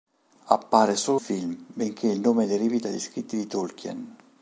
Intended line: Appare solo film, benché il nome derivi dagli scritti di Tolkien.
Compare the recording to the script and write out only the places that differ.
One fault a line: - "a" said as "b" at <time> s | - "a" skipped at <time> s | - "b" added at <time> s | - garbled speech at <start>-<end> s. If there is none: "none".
none